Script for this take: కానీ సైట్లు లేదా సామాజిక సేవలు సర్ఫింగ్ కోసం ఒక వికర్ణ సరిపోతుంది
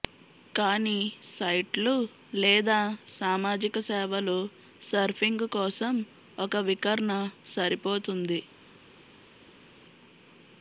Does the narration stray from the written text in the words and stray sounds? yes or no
no